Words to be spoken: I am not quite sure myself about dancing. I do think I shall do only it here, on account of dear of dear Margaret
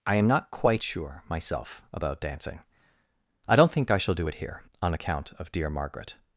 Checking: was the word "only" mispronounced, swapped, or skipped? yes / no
yes